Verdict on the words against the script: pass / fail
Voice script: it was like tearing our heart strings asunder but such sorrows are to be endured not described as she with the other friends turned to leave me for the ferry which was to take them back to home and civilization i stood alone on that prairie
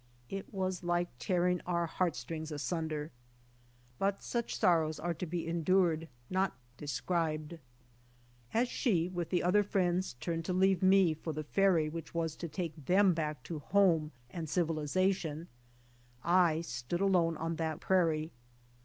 pass